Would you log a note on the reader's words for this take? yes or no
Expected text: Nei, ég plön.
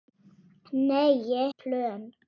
no